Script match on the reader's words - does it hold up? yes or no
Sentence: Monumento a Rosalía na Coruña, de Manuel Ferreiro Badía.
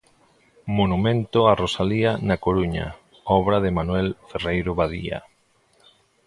no